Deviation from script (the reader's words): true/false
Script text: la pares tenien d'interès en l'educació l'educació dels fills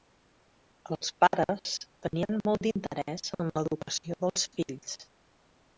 true